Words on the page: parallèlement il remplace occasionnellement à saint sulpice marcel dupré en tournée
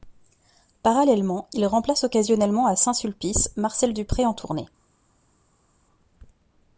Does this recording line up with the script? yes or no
yes